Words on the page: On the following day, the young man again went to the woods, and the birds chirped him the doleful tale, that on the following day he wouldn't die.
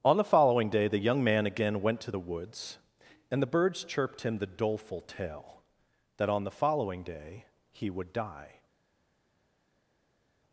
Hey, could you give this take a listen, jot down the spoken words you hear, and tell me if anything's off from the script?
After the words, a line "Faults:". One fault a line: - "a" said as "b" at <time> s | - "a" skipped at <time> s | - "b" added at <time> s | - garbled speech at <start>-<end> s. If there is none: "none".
On the following day, the young man again went to the woods, and the birds chirped him the doleful tale, that on the following day he would die.
Faults:
- "wouldn't" said as "would" at 7.9 s